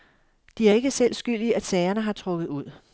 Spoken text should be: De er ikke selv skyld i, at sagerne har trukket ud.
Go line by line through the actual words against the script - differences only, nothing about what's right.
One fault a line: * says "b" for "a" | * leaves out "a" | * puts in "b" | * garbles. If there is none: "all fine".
all fine